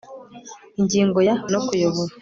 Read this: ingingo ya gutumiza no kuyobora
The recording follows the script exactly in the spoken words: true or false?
false